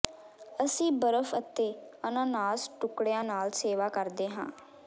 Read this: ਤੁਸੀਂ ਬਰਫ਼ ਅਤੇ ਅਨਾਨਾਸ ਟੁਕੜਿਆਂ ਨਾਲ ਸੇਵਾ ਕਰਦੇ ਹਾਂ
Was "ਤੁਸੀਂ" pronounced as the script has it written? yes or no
no